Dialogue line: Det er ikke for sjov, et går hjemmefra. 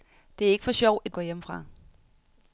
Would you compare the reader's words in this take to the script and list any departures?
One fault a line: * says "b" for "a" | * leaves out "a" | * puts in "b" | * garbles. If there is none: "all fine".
all fine